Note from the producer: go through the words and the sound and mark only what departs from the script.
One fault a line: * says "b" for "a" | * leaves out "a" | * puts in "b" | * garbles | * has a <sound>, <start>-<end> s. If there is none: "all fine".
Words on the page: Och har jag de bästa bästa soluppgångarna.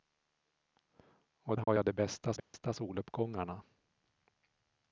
* has a dropout, 1.6-1.7 s
* has a dropout, 2.4-2.5 s